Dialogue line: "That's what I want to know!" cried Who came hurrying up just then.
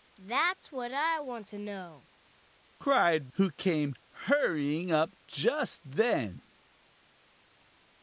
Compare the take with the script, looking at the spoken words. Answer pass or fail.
pass